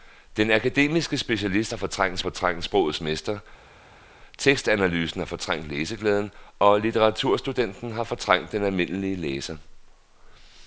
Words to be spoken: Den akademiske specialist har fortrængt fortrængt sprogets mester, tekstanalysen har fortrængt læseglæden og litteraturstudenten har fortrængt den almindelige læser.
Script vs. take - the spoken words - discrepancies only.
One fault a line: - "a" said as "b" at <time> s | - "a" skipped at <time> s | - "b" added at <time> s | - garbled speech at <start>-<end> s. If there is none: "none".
none